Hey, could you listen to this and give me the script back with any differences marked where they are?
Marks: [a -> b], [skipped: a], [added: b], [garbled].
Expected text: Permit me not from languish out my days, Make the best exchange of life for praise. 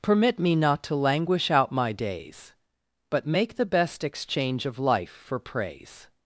Permit me not [from -> to] languish out my days, [added: But] Make the best exchange of life for praise.